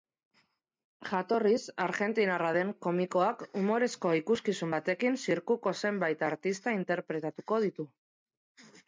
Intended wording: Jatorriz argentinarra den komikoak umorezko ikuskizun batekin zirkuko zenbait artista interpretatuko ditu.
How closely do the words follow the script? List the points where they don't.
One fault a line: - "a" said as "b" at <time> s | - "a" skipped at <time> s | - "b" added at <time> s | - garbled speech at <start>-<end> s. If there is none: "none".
none